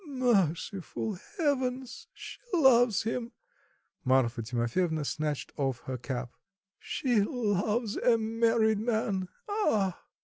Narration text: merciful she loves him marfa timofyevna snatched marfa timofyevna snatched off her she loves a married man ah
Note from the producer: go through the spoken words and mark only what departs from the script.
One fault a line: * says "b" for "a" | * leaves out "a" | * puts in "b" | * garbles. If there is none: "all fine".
* puts in "heavens"
* leaves out "marfa timofyevna snatched"
* puts in "cap"